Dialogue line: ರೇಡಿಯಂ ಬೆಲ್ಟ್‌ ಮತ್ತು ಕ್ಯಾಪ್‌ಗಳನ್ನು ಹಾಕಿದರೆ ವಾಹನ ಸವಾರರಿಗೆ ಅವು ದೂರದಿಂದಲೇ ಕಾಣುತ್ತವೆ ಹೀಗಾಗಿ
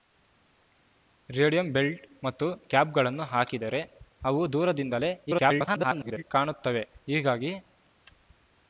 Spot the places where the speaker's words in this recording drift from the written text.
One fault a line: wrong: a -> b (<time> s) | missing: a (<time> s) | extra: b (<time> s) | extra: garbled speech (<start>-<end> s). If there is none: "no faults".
missing: ವಾಹನ ಸವಾರರಿಗೆ (3.8 s)
extra: garbled speech (5.3-6.2 s)